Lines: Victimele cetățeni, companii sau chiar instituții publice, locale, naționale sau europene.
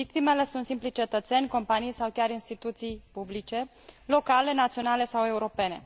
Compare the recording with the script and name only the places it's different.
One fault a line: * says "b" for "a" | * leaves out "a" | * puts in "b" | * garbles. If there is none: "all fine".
* puts in "sunt simplii"